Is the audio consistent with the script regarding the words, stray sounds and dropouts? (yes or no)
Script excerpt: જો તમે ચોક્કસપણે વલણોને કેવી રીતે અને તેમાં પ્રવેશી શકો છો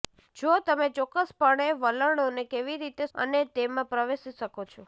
yes